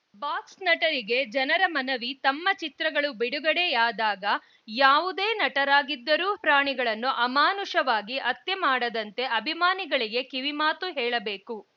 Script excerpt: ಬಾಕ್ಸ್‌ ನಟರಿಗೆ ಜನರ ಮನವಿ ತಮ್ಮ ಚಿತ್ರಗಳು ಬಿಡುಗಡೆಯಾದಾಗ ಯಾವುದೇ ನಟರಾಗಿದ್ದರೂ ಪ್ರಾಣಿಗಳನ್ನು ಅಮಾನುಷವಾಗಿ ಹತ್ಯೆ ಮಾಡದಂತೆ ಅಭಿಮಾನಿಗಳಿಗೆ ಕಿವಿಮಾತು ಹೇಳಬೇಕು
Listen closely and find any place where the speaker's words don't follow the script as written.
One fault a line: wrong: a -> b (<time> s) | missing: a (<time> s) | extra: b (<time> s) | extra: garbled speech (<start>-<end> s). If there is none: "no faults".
no faults